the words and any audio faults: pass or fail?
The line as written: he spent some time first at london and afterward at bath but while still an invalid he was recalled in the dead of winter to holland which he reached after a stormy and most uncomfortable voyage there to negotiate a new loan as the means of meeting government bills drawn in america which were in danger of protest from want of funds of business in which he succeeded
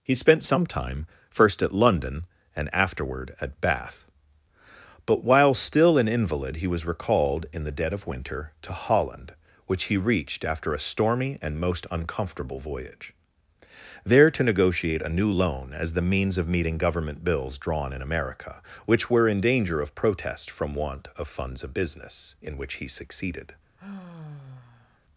fail